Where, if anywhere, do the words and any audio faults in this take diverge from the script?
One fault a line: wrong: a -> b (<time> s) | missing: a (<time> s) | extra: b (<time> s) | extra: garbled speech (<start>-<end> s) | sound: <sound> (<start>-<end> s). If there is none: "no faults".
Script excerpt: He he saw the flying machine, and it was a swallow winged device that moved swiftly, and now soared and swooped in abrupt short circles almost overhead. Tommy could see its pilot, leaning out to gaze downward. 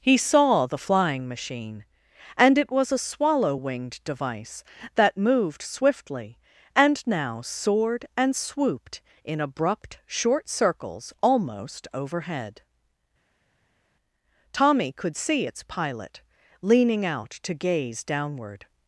missing: he (0.2 s)